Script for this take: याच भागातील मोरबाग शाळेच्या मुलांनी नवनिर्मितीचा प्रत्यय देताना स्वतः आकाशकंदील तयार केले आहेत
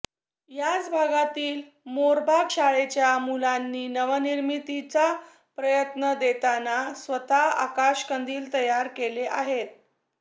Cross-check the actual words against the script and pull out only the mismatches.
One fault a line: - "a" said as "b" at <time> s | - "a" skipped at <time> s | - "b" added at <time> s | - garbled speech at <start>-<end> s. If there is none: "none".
none